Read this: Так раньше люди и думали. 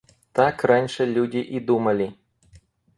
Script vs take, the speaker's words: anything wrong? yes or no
no